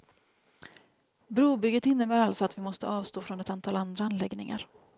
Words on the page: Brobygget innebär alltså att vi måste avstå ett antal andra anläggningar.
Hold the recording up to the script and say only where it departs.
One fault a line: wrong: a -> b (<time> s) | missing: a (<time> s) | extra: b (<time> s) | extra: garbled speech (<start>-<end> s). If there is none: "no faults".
extra: från (3.2 s)